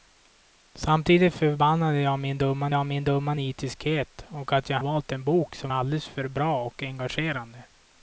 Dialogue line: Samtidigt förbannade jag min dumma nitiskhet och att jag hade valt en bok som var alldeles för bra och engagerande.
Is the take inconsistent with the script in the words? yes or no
yes